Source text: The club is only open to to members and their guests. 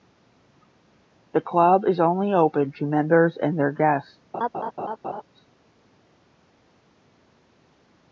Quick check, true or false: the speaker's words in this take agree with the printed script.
false